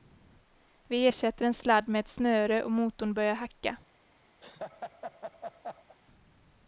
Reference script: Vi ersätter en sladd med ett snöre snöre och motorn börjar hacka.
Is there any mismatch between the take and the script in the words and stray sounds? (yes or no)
yes